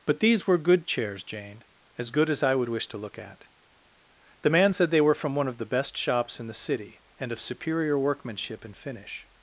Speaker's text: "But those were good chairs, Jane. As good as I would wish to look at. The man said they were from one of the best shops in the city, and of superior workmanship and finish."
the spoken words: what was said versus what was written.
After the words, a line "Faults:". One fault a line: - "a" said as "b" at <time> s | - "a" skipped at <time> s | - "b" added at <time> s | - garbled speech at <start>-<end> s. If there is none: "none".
"But these were good chairs, Jane. As good as I would wish to look at. The man said they were from one of the best shops in the city, and of superior workmanship and finish."
Faults:
- "those" said as "these" at 0.2 s